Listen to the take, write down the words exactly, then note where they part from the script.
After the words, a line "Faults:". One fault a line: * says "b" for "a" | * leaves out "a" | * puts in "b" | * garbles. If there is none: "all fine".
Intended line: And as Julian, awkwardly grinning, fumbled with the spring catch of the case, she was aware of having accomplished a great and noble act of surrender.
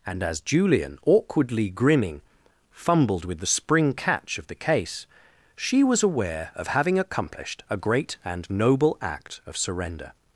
And as Julian, awkwardly grinning, fumbled with the spring catch of the case, she was aware of having accomplished a great and noble act of surrender.
Faults:
all fine